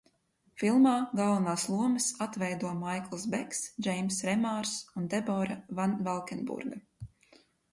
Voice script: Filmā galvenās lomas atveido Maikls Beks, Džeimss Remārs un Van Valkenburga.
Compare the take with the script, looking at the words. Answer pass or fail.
fail